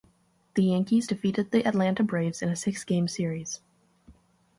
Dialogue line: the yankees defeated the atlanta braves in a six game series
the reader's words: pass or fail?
pass